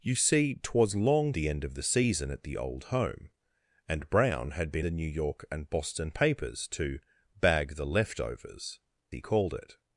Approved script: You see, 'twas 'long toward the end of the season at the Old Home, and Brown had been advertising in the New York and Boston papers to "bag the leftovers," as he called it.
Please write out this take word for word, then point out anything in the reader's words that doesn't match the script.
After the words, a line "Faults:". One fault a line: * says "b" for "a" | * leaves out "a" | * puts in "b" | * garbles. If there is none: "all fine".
You see, 'twas 'long the end of the season at the Old Home, and Brown had been the New York and Boston papers to "bag the leftovers," he called it.
Faults:
* leaves out "toward"
* leaves out "advertising in"
* leaves out "as"